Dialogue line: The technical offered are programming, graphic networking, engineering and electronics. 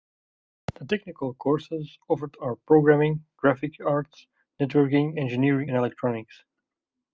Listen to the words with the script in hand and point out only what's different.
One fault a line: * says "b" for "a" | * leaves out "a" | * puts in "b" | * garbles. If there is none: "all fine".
* puts in "courses"
* puts in "arts"